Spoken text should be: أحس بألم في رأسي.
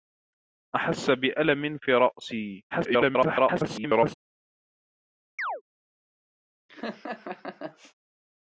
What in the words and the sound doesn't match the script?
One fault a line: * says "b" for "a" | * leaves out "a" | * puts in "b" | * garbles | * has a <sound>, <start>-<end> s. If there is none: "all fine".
* garbles
* has a chirp, 5.4-5.6 s
* has a laugh, 6.7-7.9 s